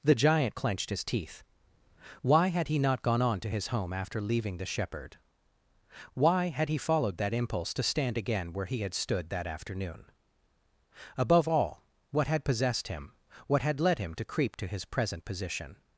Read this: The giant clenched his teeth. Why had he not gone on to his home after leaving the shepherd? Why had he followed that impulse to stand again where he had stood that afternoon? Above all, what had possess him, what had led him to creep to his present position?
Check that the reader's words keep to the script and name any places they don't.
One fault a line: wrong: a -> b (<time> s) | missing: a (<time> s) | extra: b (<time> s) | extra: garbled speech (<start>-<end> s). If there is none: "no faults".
wrong: possess -> possessed (12.4 s)